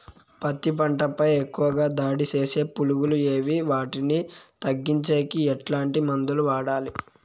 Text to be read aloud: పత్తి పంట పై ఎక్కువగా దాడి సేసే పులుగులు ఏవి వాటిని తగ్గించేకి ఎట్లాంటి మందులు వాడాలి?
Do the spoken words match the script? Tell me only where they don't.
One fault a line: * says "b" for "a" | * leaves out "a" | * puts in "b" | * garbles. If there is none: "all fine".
all fine